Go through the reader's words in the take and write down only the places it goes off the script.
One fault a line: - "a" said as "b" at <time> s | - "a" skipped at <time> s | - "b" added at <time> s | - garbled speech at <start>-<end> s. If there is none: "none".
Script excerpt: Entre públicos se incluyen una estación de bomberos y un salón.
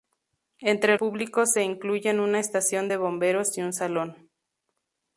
none